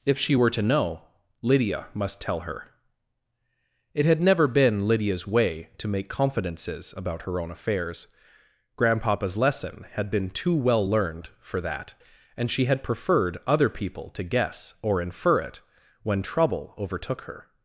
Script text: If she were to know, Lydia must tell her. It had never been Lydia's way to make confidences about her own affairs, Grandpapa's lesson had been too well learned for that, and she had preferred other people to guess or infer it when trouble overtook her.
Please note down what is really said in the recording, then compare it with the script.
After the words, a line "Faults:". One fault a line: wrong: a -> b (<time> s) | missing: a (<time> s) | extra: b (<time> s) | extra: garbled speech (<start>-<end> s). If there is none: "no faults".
If she were to know, Lydia must tell her. It had never been Lydia's way to make confidences about her own affairs, Grandpapa's lesson had been too well learned for that, and she had preferred other people to guess or infer it when trouble overtook her.
Faults:
no faults